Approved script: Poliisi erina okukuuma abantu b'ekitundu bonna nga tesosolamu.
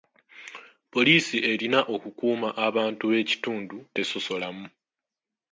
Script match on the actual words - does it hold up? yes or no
no